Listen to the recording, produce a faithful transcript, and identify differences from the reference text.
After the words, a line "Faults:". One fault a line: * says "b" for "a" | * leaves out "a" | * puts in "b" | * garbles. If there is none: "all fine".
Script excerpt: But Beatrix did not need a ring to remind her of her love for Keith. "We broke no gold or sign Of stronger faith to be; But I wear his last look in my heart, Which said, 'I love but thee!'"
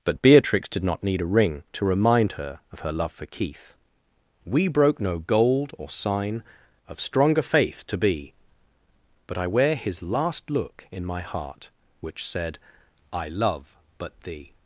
But Beatrix did not need a ring to remind her of her love for Keith. "We broke no gold or sign Of stronger faith to be; But I wear his last look in my heart, Which said, 'I love but thee!'"
Faults:
all fine